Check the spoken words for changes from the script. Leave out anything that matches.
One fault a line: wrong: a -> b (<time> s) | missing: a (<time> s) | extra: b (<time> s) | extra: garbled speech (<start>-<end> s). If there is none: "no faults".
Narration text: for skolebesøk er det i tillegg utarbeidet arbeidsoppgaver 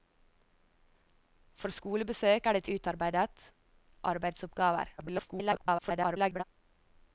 missing: tillegg (2.7 s)
extra: garbled speech (5.0-6.4 s)